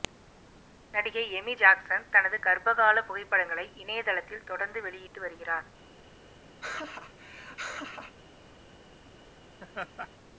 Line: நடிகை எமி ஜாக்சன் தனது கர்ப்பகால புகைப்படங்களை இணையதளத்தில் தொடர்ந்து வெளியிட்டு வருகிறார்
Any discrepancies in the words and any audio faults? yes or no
yes